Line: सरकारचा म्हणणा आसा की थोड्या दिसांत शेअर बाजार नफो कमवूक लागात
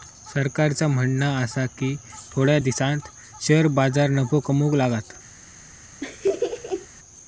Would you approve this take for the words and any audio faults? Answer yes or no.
no